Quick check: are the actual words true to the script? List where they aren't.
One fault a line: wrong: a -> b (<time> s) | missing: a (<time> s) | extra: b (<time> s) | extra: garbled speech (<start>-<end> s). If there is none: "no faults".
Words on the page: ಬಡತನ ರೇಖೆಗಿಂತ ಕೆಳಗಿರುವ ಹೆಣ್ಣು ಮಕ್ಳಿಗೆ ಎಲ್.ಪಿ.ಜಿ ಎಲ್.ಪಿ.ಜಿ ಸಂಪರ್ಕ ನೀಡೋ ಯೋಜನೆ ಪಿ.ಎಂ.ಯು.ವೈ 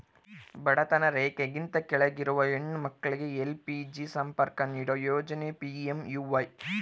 missing: ಎಲ್.ಪಿ.ಜಿ (4.0 s)